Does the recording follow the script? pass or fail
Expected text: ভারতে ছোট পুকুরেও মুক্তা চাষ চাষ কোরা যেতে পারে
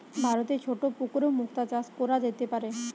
fail